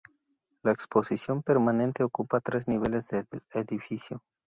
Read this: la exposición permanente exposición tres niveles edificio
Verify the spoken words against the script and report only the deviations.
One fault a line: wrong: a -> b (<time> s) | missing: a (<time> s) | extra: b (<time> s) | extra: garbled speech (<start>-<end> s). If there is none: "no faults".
wrong: exposición -> ocupa (2.0 s)
extra: del (3.1 s)